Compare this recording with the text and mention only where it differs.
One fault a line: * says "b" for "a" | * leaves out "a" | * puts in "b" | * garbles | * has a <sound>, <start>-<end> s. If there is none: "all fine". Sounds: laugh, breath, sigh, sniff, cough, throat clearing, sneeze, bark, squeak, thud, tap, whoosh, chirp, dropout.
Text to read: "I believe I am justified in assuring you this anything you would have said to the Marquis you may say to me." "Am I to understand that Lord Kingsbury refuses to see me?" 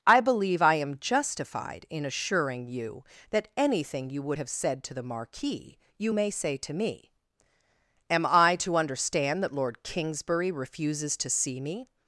* says "that" for "this"